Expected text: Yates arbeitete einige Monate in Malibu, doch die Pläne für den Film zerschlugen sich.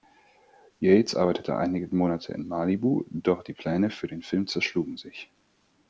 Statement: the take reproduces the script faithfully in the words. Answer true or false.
true